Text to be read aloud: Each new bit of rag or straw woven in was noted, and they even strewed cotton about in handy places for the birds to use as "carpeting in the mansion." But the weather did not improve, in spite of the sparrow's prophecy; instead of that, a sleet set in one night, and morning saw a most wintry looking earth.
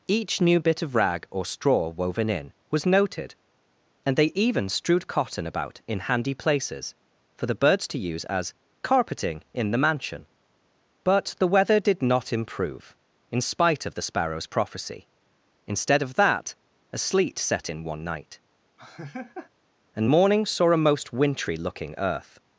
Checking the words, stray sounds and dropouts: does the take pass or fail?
fail